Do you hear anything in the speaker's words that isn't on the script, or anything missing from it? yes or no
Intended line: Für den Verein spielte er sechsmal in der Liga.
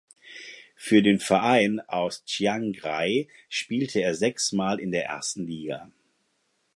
yes